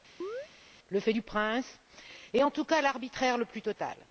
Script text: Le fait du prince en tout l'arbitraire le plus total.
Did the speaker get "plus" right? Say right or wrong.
right